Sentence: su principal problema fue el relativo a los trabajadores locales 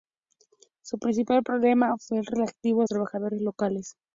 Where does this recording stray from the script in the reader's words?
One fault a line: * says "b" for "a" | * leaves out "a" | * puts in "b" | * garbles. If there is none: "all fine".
* leaves out "los"